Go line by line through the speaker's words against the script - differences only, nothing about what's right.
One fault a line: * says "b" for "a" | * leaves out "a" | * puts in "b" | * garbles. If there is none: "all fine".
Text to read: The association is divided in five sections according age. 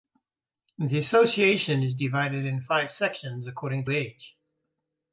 all fine